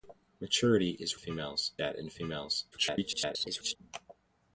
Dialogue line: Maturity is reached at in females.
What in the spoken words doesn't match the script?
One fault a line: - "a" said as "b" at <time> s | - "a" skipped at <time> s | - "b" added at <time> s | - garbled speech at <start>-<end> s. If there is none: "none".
- "reached" said as "females" at 1.2 s
- garbled speech at 2.7-3.8 s